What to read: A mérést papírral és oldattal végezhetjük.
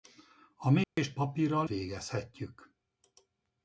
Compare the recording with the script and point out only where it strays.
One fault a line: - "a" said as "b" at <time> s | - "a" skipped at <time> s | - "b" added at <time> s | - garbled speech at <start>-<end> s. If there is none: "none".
- "és oldattal" skipped at 1.7 s